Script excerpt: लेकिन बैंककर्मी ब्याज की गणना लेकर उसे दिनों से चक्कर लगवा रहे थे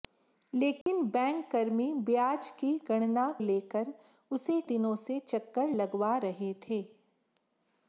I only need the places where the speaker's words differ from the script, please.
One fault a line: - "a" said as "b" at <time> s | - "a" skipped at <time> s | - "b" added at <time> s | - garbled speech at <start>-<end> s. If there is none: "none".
none